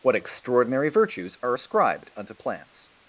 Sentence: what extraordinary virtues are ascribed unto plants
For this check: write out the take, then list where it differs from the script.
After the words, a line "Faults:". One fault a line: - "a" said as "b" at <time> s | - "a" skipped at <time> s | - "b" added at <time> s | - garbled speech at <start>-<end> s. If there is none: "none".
what extraordinary virtues are ascribed unto plants
Faults:
none